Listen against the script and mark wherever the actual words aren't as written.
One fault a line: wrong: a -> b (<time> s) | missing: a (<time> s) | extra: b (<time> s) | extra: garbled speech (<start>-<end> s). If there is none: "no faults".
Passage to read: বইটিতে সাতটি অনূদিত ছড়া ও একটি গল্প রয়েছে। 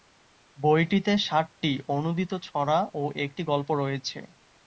no faults